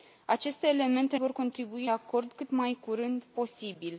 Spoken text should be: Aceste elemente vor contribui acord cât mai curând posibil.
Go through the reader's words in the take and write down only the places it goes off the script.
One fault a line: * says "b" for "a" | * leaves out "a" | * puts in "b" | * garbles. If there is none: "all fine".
all fine